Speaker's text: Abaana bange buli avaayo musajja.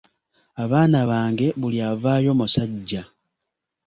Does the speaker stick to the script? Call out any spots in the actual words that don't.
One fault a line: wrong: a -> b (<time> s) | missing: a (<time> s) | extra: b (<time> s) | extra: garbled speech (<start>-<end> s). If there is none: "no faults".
no faults